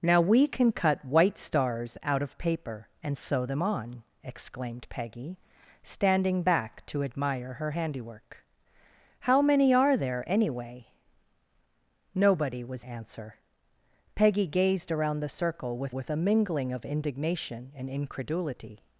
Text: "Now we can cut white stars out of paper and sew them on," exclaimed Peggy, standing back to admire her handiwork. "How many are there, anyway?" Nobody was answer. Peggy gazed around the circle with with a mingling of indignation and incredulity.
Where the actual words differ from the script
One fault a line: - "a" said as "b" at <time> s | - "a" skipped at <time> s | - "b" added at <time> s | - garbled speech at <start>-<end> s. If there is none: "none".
none